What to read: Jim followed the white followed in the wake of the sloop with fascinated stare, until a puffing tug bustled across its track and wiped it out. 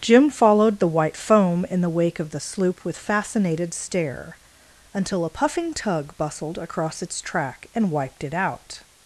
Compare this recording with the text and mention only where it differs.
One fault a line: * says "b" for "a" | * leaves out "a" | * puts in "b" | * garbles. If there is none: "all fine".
* says "foam" for "followed"